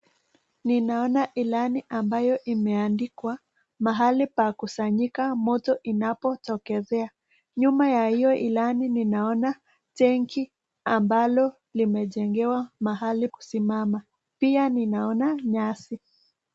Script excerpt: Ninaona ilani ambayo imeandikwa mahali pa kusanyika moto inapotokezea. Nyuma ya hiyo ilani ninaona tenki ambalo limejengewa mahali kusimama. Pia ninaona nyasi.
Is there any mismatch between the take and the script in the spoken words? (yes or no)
no